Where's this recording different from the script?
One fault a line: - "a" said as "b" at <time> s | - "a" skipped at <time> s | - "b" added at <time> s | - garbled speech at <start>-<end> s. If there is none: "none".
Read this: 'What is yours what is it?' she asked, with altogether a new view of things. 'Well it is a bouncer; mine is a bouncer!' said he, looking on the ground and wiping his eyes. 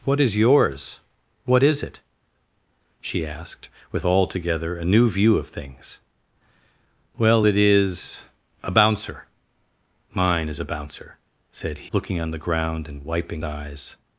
- "he" skipped at 11.9 s
- "his" skipped at 13.4 s